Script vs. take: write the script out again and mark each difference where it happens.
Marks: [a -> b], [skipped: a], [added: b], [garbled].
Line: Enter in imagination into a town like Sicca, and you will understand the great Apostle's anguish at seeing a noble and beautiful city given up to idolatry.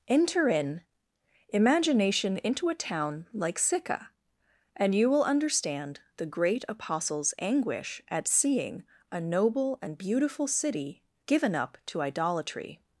Enter in imagination into a town like Sicca, and you will understand the great Apostle's anguish at seeing a noble and beautiful city given up to idolatry.